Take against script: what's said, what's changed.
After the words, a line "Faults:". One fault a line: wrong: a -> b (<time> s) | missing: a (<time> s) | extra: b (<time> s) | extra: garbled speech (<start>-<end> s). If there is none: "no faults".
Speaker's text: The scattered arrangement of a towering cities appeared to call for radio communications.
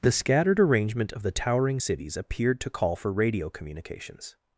The scattered arrangement of the towering cities appeared to call for radio communications.
Faults:
wrong: a -> the (1.2 s)